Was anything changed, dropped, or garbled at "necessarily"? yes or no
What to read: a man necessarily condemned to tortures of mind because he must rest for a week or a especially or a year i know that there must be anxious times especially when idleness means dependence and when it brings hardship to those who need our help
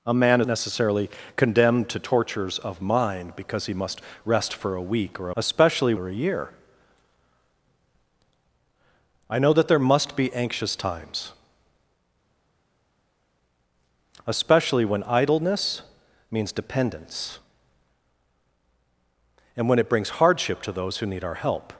no